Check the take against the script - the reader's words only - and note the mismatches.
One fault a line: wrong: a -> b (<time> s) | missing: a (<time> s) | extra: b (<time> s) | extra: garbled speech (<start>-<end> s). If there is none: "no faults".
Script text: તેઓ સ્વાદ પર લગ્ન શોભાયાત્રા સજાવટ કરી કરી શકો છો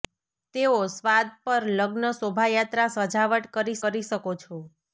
no faults